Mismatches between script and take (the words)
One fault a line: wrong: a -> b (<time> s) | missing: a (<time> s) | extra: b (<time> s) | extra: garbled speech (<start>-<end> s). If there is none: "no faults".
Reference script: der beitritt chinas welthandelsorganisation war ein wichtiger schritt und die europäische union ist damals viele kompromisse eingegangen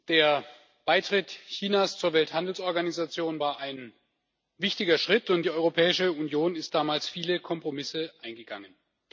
extra: zur (2.0 s)